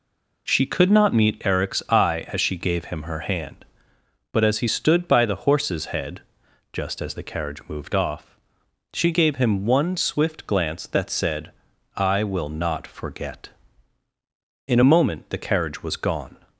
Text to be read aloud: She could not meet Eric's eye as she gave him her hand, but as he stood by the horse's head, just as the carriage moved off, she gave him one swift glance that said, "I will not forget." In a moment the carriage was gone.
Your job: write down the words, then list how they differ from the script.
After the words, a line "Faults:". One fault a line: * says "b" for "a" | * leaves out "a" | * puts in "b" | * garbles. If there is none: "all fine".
She could not meet Eric's eye as she gave him her hand, but as he stood by the horse's head, just as the carriage moved off, she gave him one swift glance that said, "I will not forget." In a moment the carriage was gone.
Faults:
all fine